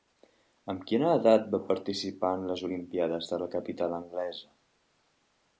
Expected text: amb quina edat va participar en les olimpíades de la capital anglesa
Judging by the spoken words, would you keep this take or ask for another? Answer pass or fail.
pass